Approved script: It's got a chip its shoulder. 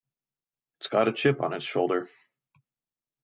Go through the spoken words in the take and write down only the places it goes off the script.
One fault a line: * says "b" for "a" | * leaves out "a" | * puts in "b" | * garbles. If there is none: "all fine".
* puts in "on"